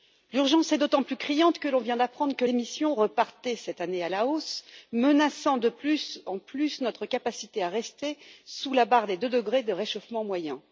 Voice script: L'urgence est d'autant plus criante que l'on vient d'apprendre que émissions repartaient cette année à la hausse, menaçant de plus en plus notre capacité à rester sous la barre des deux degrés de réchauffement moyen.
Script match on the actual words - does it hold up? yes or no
yes